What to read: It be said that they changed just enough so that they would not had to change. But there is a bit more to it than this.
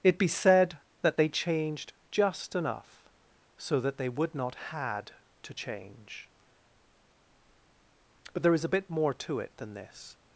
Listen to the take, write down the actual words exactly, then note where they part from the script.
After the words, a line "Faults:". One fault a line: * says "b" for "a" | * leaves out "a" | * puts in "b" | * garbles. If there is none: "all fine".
It be said that they changed just enough so that they would not had to change. But there is a bit more to it than this.
Faults:
all fine